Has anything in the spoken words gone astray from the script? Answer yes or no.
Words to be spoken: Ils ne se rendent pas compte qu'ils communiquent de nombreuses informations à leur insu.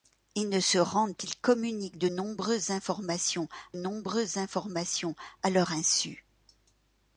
yes